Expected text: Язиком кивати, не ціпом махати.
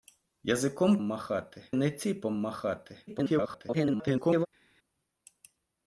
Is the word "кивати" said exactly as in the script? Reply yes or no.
no